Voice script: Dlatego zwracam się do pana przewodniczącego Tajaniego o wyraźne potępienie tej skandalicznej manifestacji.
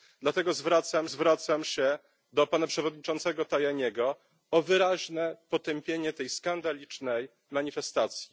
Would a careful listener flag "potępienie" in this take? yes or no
no